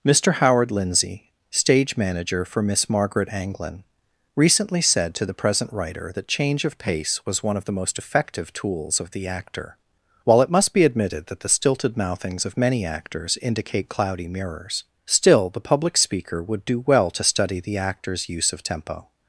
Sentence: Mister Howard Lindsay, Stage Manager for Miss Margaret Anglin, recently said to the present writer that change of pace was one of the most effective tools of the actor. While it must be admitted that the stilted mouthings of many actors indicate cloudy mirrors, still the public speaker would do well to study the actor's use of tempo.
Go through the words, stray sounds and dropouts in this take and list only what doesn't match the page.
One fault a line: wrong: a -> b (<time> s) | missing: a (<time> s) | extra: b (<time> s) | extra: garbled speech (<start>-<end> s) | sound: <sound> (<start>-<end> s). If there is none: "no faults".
no faults